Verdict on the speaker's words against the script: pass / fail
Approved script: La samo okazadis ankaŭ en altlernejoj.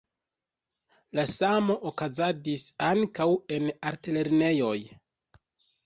pass